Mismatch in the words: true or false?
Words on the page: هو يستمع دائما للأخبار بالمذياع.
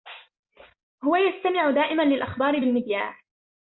false